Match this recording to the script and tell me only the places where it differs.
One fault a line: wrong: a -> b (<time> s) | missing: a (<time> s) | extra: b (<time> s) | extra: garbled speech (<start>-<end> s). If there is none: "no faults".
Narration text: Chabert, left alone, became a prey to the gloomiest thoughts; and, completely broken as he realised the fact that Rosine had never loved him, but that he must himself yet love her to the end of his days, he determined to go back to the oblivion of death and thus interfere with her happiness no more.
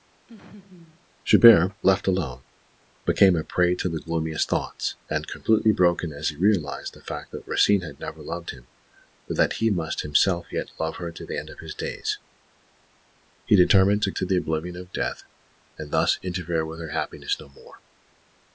missing: go back (14.1 s)